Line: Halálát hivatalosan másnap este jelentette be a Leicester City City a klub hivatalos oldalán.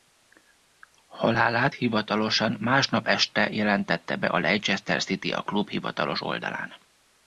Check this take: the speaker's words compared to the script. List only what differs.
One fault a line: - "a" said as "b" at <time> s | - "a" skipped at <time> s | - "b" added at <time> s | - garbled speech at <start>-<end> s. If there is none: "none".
- "City" skipped at 5.3 s